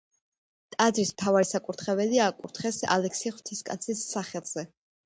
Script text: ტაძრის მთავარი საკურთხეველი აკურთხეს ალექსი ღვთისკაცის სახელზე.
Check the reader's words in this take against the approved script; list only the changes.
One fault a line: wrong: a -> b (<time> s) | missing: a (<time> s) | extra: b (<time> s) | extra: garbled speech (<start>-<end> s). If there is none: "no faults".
no faults